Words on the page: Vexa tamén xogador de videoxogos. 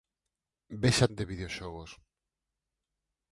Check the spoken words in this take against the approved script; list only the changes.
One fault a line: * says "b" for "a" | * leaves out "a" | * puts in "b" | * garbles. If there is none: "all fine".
* leaves out "tamén xogador"